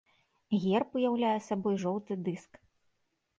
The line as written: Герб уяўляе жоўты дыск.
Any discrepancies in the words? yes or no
yes